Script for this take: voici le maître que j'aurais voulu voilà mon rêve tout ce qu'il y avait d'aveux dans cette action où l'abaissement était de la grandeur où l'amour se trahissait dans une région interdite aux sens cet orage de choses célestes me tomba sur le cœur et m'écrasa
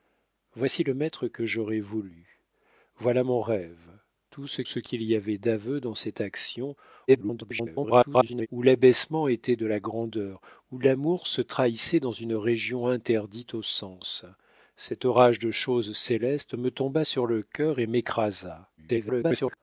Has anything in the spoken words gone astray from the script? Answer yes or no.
yes